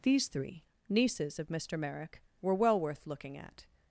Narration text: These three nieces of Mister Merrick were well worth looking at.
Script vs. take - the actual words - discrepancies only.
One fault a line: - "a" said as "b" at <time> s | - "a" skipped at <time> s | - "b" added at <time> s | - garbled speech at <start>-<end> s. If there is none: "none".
none